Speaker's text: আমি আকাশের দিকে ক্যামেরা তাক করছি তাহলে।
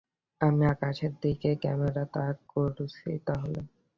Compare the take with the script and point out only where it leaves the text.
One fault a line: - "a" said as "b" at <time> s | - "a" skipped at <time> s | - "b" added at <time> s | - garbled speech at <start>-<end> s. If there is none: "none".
none